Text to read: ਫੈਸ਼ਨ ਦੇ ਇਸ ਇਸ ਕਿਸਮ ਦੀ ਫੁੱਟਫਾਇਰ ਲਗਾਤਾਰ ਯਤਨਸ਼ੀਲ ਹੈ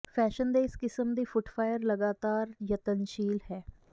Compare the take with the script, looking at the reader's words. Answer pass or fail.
fail